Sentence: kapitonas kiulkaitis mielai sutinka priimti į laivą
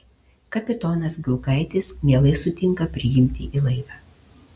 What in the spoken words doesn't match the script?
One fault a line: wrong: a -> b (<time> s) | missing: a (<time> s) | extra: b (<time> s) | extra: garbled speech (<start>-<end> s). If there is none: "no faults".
no faults